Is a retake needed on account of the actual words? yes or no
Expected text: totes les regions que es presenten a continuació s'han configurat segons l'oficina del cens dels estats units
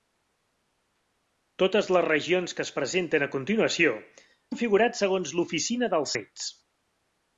yes